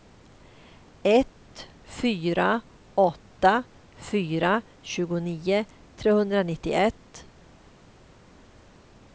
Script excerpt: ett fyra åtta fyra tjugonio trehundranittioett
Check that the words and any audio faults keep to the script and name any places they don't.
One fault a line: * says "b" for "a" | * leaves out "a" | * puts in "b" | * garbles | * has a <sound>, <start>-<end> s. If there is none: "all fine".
all fine